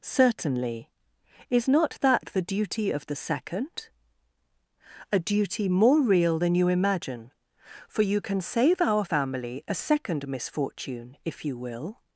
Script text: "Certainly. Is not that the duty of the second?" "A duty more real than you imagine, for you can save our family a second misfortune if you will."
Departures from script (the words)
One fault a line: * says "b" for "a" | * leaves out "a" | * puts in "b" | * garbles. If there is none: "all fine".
all fine